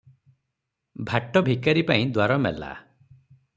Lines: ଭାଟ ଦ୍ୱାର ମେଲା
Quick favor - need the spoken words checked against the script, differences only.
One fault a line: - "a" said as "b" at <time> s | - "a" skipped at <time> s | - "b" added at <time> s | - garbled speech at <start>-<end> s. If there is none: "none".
- "ଭିକାରୀପାଇଁ" added at 1.4 s